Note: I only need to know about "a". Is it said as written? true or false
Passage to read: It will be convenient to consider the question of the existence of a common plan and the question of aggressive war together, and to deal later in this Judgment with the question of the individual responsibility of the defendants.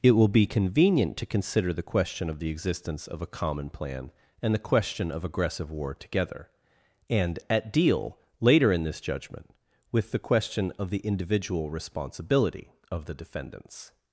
true